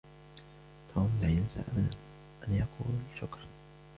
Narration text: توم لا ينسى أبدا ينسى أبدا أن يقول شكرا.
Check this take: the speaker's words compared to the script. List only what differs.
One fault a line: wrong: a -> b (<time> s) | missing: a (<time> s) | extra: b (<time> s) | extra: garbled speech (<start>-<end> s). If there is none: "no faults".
missing: ينسى أبدا (1.9 s)